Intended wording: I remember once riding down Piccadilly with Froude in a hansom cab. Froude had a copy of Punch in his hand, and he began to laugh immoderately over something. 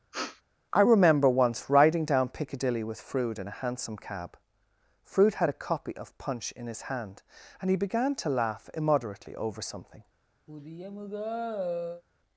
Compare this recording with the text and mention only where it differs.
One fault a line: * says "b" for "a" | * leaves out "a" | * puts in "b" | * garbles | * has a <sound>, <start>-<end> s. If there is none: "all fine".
* has a sniff, 0.1-0.4 s
* has a sigh, 10.5-12.0 s